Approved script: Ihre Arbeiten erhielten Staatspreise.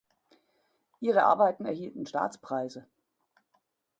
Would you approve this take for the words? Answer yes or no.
yes